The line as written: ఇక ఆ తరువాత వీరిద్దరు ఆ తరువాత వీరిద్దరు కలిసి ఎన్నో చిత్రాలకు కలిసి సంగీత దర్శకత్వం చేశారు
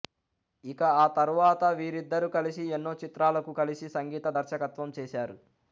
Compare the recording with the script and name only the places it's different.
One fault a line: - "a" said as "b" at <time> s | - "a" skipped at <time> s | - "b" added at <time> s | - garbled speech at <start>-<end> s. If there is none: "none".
- "ఆ తరువాత వీరిద్దరు" skipped at 2.3 s